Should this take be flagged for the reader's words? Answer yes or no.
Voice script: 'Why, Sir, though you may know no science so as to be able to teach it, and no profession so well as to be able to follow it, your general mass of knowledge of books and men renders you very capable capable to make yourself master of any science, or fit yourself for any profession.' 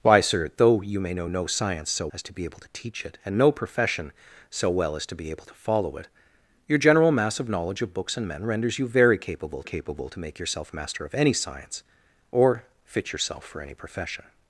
no